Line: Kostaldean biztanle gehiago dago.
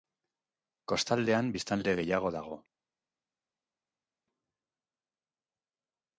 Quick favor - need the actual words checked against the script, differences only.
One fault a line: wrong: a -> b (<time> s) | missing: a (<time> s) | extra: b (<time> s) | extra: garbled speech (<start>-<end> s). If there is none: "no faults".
no faults